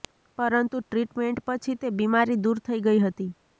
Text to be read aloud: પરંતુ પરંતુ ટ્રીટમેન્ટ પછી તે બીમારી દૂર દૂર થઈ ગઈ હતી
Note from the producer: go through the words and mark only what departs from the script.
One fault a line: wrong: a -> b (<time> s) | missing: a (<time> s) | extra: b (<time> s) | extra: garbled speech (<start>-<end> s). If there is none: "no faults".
missing: પરંતુ (0.8 s)
missing: દૂર (2.6 s)